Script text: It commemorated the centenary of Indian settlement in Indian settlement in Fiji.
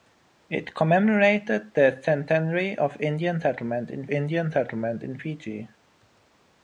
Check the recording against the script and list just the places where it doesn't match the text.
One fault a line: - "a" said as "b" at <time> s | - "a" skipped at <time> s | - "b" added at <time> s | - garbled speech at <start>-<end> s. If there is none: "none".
none